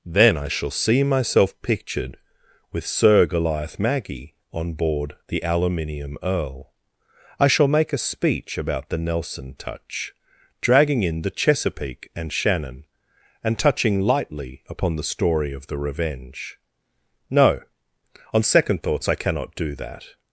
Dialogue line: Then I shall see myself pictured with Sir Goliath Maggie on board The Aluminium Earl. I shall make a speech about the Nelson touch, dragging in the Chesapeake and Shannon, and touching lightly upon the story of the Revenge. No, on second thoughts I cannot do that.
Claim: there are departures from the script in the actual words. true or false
false